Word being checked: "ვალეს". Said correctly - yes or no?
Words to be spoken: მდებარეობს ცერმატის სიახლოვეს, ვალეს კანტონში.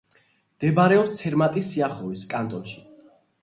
no